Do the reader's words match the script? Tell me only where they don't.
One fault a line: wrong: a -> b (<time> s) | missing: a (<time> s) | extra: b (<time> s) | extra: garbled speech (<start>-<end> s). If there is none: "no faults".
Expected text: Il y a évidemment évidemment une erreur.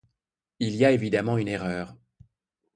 missing: évidemment (1.4 s)